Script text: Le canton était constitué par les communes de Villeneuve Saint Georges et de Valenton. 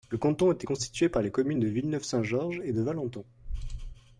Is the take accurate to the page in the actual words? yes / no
yes